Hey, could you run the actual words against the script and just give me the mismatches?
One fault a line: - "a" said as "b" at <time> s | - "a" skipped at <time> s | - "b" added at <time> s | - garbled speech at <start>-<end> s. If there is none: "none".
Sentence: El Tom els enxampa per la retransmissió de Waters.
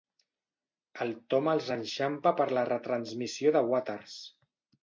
none